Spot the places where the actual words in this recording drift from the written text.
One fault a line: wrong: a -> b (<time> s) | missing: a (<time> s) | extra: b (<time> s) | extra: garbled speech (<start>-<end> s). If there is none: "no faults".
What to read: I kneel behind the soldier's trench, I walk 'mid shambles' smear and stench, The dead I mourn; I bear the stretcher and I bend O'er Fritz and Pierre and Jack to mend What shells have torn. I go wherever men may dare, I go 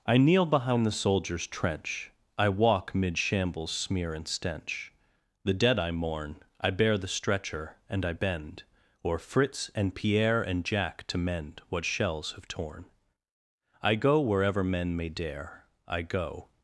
no faults